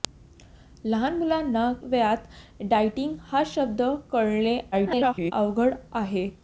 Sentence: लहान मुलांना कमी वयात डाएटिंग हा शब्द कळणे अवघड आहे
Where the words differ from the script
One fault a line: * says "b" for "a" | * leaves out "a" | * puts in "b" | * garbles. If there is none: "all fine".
* leaves out "कमी"
* garbles